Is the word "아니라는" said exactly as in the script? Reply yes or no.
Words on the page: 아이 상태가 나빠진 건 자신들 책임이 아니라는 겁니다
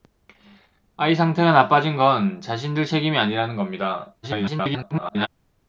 yes